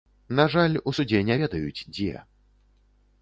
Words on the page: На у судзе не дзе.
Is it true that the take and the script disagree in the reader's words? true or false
true